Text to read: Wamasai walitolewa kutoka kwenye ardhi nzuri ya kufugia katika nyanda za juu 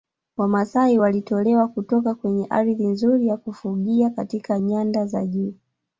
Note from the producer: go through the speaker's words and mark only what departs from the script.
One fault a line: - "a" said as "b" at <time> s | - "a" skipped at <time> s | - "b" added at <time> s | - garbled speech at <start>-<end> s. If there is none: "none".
none